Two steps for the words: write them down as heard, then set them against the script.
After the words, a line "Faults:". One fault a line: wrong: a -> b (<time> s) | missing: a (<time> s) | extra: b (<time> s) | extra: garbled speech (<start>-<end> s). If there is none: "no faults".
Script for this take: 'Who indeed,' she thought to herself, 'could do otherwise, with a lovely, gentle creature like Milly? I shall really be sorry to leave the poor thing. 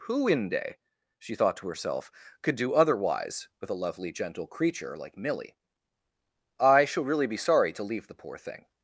'Who inde,' she thought to herself, 'could do otherwise, with a lovely, gentle creature like Milly? I shall really be sorry to leave the poor thing.
Faults:
wrong: indeed -> inde (0.3 s)